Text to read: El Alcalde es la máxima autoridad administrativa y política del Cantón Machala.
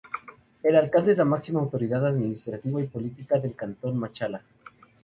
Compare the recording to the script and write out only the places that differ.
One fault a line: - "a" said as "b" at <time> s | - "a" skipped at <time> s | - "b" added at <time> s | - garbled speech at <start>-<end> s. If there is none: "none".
none